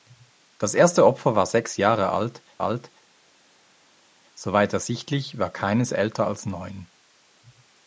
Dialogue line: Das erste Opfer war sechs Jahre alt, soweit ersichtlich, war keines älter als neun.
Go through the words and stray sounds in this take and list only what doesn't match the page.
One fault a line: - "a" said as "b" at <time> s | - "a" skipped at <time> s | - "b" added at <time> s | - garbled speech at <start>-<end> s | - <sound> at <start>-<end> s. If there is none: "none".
- "alt" added at 2.6 s